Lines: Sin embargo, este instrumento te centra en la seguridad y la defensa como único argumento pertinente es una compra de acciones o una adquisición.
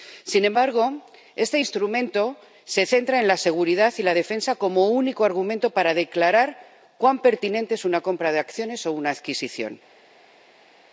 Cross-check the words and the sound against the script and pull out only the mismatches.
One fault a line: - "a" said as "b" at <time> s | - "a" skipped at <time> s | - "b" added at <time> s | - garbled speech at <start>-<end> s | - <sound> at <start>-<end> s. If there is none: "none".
- "te" said as "se" at 2.6 s
- "para declarar cuán" added at 5.7 s